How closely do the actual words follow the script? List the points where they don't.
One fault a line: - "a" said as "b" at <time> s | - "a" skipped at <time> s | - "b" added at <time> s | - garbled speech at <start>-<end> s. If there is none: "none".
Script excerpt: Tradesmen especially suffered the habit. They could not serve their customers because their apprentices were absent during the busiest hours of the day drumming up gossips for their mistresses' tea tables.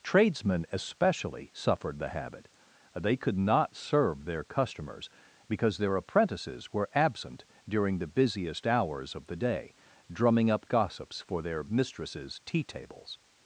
none